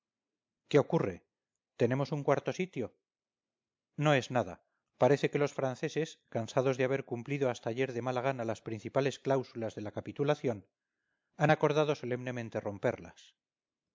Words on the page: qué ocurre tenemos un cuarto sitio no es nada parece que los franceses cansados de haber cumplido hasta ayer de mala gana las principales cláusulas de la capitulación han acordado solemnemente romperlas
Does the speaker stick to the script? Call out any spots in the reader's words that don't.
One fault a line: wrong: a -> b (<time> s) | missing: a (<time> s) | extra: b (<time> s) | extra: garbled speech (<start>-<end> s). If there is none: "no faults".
no faults